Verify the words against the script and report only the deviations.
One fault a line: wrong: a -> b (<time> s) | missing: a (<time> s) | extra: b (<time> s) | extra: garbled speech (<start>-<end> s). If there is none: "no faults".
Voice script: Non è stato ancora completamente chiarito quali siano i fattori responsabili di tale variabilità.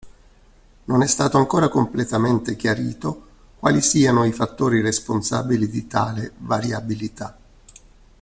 no faults